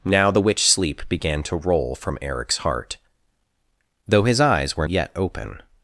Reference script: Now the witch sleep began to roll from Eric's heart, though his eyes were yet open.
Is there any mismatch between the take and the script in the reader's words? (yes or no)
no